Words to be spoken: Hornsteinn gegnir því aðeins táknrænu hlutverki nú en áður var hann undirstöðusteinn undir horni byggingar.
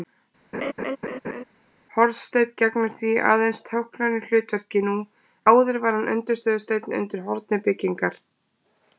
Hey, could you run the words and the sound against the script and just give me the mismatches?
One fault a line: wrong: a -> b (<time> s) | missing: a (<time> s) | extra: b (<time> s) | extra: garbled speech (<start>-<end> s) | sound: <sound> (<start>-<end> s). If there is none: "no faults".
sound: laugh (0.5-1.4 s)
missing: en (5.0 s)